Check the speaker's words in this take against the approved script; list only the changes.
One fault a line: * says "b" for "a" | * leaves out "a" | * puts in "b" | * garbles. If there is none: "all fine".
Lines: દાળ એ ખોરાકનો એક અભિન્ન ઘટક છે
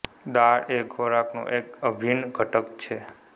all fine